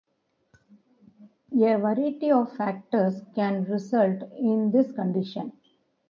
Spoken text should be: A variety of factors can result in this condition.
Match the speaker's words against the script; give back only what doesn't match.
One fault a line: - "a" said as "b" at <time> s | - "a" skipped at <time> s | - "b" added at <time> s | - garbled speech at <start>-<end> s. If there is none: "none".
none